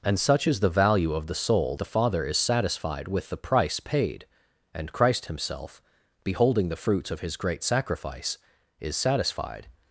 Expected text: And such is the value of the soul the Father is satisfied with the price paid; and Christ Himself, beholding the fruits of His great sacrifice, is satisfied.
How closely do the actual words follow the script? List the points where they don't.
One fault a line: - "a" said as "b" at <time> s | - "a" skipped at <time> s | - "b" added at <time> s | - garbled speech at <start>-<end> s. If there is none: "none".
none